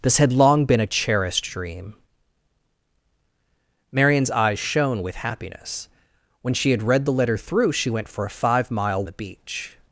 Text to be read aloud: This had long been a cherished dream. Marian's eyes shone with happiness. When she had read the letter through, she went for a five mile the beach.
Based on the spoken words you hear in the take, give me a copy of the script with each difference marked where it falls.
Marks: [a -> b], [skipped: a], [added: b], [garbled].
This had long been a cherished dream. Marian's eyes shone with happiness. When she had read the letter through, she went for a five mile the beach.